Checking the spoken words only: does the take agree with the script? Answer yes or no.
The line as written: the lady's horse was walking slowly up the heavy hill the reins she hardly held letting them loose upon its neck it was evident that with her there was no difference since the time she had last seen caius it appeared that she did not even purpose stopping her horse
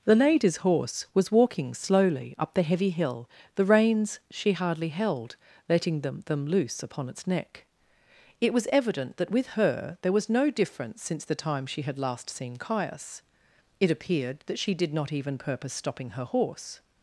no